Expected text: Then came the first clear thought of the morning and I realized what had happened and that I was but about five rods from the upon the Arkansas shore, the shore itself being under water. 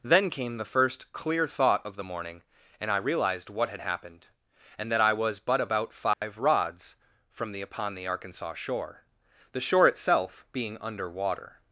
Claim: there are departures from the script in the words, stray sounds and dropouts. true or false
true